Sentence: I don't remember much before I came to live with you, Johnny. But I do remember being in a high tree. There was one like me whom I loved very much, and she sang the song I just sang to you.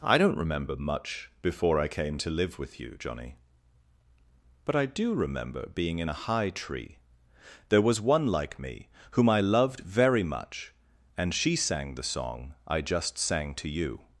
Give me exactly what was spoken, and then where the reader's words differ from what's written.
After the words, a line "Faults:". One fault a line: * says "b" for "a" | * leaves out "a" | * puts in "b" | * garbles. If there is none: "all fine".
I don't remember much before I came to live with you, Johnny. But I do remember being in a high tree. There was one like me whom I loved very much, and she sang the song I just sang to you.
Faults:
all fine